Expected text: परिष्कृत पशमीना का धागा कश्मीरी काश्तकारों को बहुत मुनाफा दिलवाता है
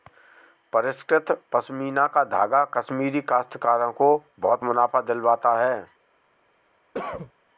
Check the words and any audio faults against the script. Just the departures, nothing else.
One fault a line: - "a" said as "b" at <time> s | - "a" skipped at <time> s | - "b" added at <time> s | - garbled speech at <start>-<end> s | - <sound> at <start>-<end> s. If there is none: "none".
- cough at 6.9-7.3 s